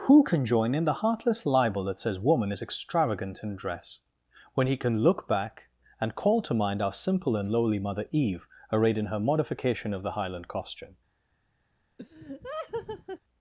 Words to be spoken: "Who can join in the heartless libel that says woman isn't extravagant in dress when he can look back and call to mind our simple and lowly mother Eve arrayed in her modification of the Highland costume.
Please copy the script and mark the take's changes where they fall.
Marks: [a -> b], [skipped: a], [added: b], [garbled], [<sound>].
"Who can join in the heartless libel that says woman [isn't -> is] extravagant in dress when he can look back and call to mind our simple and lowly mother Eve arrayed in her modification of the Highland costume. [laugh]